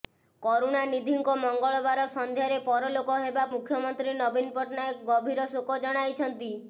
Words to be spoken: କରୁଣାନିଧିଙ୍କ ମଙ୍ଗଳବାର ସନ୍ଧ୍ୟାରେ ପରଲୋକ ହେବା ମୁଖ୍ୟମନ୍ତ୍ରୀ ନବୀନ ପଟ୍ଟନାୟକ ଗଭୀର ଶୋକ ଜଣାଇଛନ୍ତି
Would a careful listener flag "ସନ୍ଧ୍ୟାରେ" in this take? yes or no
no